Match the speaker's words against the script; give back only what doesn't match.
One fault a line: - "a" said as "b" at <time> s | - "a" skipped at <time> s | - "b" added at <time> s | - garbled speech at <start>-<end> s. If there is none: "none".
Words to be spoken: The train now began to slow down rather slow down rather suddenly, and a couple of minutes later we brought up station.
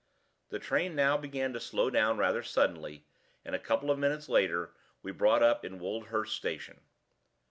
- "slow down rather" skipped at 2.4 s
- "in Woldhurst" added at 5.6 s